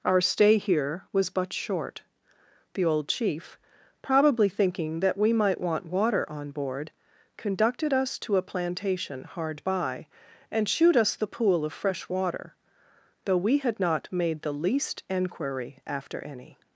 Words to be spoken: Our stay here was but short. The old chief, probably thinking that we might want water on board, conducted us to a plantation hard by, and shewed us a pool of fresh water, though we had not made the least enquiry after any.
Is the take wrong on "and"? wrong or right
right